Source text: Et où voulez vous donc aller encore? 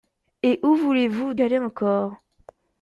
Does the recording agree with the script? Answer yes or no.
no